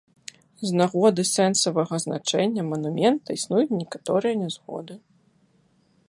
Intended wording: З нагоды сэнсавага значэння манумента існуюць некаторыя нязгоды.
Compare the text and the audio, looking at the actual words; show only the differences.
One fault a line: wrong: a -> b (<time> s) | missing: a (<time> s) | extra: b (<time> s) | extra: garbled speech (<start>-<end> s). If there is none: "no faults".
no faults